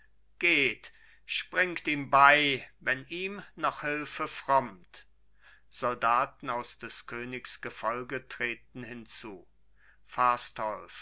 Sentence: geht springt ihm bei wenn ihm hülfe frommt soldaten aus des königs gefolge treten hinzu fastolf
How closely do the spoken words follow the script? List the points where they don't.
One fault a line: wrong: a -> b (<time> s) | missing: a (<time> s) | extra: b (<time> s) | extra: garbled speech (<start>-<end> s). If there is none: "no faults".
extra: noch (3.5 s)